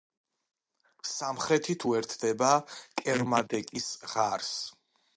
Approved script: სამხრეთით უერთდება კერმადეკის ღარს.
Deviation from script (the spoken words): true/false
false